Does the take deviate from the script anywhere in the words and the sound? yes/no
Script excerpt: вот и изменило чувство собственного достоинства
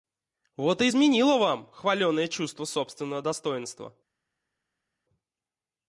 yes